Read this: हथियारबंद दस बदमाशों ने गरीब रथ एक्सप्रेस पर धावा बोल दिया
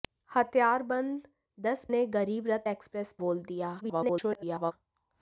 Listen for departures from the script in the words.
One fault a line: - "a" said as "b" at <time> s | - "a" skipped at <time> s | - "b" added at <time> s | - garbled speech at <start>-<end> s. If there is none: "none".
- "बदमाशों" skipped at 1.9 s
- "पर धावा" skipped at 3.1 s
- garbled speech at 3.8-4.7 s